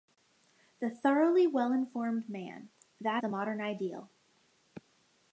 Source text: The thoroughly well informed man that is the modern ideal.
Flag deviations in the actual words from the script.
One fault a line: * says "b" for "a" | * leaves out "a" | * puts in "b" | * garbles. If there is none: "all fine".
* leaves out "is"